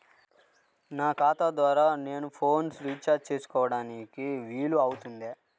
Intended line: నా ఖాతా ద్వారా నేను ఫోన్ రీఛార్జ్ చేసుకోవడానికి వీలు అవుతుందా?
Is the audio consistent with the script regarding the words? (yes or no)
yes